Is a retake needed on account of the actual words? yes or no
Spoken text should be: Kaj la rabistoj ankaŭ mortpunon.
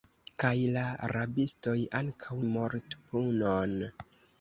no